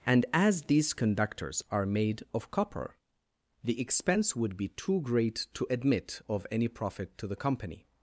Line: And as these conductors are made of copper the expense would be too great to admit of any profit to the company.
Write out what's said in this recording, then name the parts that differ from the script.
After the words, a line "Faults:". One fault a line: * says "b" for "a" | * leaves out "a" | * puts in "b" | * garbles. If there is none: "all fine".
And as these conductors are made of copper the expense would be too great to admit of any profit to the company.
Faults:
all fine